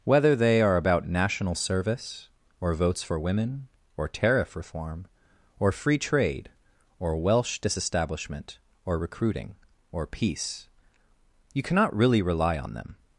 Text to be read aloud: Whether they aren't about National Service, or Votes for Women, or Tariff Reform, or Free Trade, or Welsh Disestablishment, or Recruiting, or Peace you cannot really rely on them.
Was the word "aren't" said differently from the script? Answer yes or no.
yes